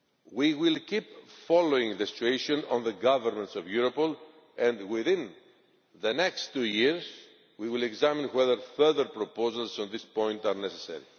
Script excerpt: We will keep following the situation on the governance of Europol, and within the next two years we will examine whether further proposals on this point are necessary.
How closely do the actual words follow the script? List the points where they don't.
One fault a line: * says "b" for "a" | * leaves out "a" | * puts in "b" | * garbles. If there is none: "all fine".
all fine